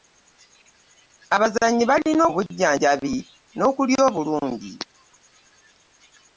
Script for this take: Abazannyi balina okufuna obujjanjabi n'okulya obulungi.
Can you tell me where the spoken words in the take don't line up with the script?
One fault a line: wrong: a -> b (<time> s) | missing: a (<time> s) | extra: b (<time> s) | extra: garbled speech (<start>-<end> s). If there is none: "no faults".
missing: okufuna (2.2 s)